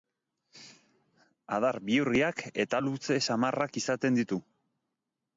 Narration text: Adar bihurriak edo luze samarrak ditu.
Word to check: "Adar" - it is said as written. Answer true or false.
true